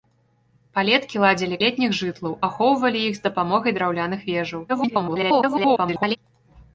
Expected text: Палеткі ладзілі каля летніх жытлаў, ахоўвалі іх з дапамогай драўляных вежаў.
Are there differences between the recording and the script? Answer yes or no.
yes